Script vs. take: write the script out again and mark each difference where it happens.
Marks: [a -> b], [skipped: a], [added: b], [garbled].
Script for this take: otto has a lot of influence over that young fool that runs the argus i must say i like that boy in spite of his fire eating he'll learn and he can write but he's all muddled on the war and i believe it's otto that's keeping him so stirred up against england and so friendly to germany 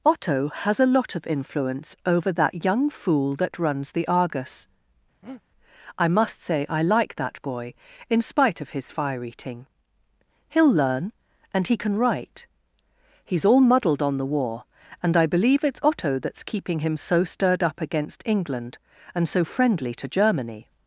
otto has a lot of influence over that young fool that runs the argus i must say i like that boy in spite of his fire eating he'll learn and he can write [skipped: but] he's all muddled on the war and i believe it's otto that's keeping him so stirred up against england and so friendly to germany